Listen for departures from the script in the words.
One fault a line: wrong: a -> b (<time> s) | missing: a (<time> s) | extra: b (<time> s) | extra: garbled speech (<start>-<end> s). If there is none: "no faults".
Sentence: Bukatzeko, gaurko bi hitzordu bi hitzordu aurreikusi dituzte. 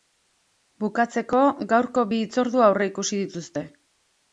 missing: bi hitzordu (2.7 s)